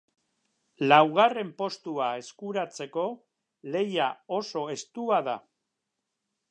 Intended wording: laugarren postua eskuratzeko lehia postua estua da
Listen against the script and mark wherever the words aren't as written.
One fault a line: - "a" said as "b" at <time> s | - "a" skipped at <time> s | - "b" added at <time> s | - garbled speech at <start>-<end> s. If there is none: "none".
- "postua" said as "oso" at 4.4 s